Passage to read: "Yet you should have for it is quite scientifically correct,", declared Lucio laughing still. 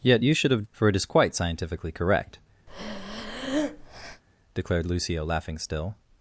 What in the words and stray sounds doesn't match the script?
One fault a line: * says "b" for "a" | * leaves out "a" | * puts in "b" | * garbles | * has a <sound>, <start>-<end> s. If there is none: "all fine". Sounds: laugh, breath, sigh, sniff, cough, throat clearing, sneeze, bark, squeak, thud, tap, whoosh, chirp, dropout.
* has a breath, 2.7-4.2 s